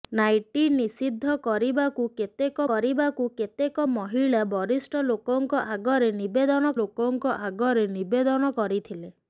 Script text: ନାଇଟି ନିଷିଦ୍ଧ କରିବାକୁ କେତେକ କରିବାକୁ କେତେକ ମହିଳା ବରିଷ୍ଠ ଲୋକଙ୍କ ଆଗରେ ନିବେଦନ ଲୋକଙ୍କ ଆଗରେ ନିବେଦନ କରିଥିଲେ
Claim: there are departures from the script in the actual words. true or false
false